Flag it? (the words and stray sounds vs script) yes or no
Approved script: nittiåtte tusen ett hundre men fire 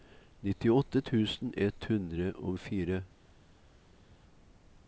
yes